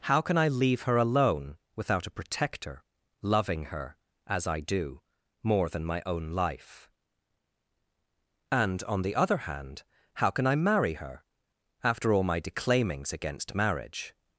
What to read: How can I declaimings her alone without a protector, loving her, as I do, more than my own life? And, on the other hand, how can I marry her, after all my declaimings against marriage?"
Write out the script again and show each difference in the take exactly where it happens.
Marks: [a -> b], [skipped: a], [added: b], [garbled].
How can I [declaimings -> leave] her alone without a protector, loving her, as I do, more than my own life? And, on the other hand, how can I marry her, after all my declaimings against marriage?"